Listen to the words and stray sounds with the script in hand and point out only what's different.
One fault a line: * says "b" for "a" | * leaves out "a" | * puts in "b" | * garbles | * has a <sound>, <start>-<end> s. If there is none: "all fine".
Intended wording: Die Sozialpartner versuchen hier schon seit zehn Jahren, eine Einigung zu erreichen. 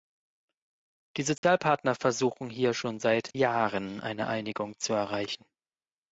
* has a dropout, 1.4-1.4 s
* leaves out "zehn"